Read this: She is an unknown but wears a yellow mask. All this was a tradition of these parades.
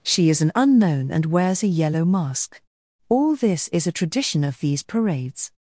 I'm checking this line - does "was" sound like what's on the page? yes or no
no